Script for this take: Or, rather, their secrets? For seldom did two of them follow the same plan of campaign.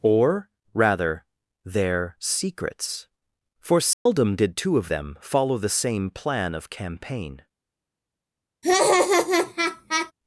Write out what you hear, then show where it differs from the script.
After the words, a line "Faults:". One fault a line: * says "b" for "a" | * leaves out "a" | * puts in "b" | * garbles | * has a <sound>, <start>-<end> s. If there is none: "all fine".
Or, rather, their secrets? For seldom did two of them follow the same plan of campaign.
Faults:
* has a dropout, 3.9-4.1 s
* has a laugh, 8.6-10.1 s